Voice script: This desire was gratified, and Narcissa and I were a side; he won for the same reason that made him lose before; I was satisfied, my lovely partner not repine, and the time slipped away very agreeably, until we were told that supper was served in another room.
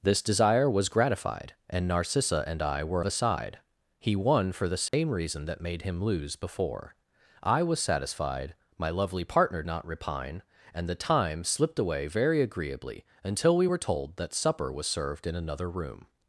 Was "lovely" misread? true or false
false